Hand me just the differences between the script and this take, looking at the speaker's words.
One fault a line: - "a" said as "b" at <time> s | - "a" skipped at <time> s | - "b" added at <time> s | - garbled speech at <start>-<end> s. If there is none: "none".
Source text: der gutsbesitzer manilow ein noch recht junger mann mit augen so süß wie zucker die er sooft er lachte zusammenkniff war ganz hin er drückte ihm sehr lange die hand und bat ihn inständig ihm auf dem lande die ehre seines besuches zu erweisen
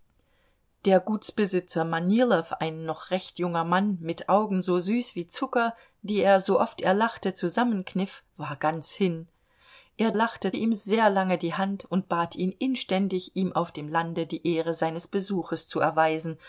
- "drückte" said as "lachte" at 10.1 s